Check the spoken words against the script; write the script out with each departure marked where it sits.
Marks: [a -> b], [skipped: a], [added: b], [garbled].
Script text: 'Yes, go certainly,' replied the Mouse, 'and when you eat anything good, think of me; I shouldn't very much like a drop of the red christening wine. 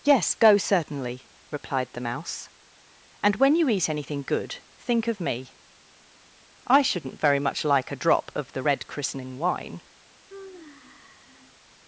'Yes, go certainly,' replied the Mouse, 'and when you eat anything good, think of me; I shouldn't very much like a drop of the red christening wine.